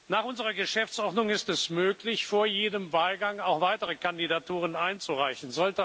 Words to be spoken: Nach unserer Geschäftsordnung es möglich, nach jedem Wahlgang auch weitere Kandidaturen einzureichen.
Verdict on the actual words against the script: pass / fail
fail